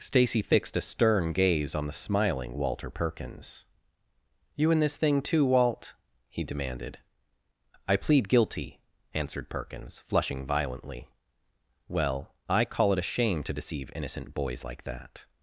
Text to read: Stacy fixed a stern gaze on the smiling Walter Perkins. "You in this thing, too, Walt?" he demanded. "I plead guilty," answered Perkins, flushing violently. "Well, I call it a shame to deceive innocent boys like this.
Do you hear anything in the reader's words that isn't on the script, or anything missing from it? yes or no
yes